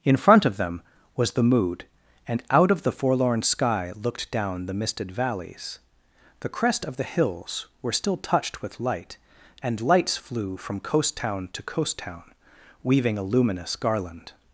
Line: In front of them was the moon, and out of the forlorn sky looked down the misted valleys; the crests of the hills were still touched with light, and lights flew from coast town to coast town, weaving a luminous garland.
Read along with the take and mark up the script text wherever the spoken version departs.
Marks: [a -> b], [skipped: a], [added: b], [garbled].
In front of them was the [moon, -> mood] and out of the forlorn sky looked down the misted valleys; the [crests -> crest] of the hills were still touched with light, and lights flew from coast town to coast town, weaving a luminous garland.